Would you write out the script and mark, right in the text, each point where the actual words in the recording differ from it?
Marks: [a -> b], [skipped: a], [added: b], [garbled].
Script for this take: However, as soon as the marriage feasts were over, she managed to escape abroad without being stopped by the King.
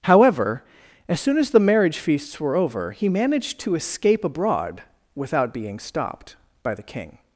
However, as soon as the marriage feasts were over, [she -> he] managed to escape abroad without being stopped by the King.